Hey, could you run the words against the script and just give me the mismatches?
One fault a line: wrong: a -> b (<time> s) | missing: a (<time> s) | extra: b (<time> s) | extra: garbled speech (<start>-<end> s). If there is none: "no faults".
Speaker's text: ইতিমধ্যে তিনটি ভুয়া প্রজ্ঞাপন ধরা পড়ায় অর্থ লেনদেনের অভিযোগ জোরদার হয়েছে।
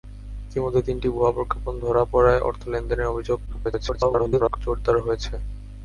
extra: garbled speech (3.5-4.6 s)